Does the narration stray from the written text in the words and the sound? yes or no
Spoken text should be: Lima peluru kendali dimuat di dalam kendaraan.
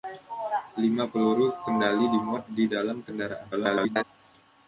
yes